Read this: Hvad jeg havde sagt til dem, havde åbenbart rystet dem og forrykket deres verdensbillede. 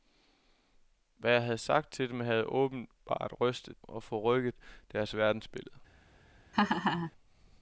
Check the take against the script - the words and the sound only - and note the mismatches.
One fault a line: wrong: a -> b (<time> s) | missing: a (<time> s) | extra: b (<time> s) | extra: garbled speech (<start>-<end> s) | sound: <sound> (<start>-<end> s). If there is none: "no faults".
missing: dem (3.9 s)
sound: laugh (6.5-7.1 s)